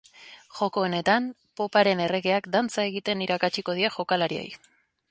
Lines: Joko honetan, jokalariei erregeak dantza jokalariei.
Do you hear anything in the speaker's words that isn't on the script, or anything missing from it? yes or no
yes